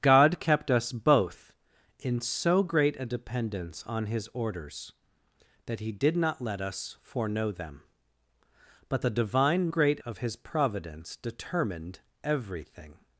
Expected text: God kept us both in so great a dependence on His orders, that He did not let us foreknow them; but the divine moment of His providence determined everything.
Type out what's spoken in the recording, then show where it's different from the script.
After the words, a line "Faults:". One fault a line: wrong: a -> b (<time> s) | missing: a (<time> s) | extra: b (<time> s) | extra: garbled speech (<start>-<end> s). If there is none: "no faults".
God kept us both in so great a dependence on His orders, that He did not let us foreknow them; but the divine great of His providence determined everything.
Faults:
wrong: moment -> great (9.7 s)